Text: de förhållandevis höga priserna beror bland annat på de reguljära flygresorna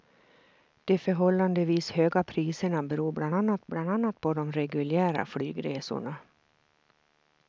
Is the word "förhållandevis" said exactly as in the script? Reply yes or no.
yes